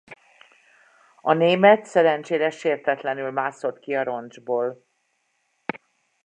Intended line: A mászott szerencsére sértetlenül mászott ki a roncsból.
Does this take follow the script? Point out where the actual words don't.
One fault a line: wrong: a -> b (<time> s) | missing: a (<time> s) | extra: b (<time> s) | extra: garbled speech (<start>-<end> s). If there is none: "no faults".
wrong: mászott -> német (1.3 s)